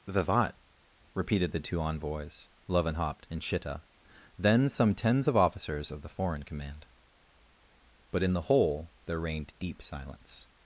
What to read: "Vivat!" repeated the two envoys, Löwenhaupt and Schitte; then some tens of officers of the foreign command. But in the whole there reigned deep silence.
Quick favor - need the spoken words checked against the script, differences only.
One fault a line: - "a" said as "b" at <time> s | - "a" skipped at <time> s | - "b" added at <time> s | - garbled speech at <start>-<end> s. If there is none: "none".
none